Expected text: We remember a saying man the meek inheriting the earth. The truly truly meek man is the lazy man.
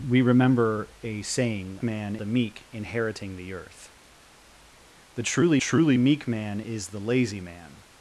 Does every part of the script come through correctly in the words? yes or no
yes